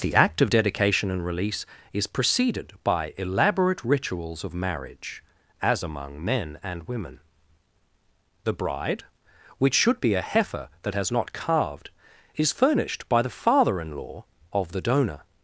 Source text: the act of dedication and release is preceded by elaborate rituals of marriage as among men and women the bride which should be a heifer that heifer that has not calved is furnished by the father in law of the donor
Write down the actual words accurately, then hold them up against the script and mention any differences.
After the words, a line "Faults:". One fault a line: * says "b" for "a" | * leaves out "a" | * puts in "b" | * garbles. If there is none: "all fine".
the act of dedication and release is preceded by elaborate rituals of marriage as among men and women the bride which should be a heifer that has not calved is furnished by the father in law of the donor
Faults:
* leaves out "heifer that"